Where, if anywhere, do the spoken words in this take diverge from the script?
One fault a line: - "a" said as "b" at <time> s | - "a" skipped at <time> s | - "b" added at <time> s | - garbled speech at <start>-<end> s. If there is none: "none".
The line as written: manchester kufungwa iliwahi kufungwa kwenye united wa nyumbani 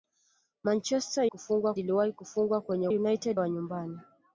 none